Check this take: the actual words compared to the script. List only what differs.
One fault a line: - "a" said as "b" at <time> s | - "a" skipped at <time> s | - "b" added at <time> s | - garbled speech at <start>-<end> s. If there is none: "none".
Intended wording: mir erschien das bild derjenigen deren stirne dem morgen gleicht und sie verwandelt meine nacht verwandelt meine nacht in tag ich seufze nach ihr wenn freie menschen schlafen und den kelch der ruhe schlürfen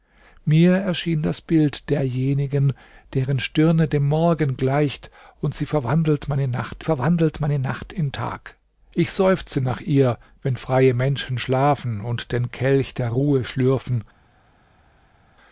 none